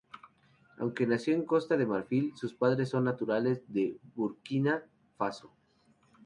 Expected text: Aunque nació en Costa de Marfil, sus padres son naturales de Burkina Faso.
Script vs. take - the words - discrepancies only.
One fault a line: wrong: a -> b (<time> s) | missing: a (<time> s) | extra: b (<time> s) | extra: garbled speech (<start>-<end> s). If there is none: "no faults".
no faults